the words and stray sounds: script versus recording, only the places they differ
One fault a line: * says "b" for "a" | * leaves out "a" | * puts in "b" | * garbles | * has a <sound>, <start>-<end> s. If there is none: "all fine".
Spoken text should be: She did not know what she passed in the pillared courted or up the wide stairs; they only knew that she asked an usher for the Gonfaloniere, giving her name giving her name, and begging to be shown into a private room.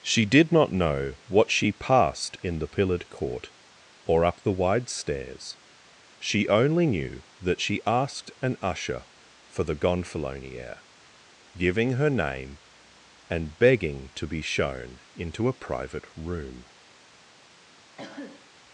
* says "court" for "courted"
* says "she" for "they"
* leaves out "giving her name"
* has a cough, 18.0-18.5 s